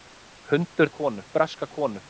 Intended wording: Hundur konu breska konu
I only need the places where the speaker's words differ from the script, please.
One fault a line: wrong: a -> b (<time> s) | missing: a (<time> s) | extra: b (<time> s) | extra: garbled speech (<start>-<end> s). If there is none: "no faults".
no faults